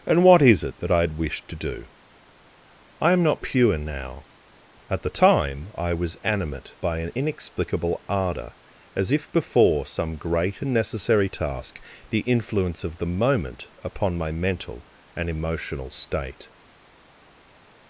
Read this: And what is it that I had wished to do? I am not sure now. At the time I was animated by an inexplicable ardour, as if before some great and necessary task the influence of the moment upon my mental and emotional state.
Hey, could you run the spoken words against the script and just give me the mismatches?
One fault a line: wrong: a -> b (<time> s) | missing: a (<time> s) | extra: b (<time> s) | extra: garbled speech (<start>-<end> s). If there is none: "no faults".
wrong: sure -> pure (3.4 s)
wrong: animated -> animate (6.2 s)